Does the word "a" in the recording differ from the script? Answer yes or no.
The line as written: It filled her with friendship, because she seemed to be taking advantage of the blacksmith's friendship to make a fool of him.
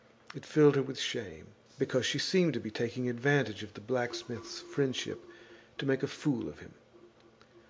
no